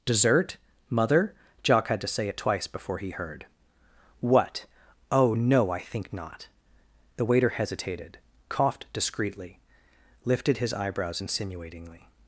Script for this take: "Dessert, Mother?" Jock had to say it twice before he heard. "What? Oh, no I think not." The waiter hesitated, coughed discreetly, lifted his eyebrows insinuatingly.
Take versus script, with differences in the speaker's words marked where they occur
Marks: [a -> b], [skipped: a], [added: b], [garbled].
"Dessert, Mother?" Jock had to say it twice before he heard. "What? Oh, no I think not." The waiter hesitated, coughed discreetly, lifted his eyebrows insinuatingly.